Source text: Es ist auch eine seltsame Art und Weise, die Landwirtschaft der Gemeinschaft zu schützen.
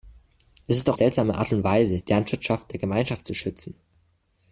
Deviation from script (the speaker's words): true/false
true